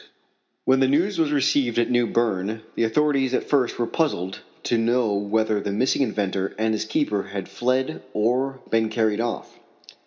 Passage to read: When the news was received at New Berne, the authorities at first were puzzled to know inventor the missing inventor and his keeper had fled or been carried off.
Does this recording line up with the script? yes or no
no